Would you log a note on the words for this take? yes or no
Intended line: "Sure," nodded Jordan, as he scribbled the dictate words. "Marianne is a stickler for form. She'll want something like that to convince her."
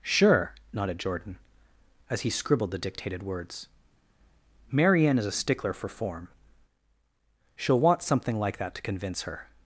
yes